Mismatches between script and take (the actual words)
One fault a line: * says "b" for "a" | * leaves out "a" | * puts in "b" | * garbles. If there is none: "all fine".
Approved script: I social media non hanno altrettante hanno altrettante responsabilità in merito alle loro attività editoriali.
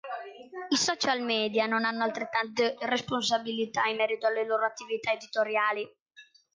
* leaves out "hanno altrettante"